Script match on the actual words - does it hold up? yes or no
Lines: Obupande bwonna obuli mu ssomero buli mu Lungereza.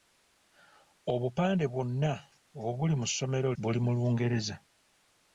yes